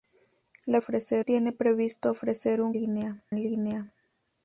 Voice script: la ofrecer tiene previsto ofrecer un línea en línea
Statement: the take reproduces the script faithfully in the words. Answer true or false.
true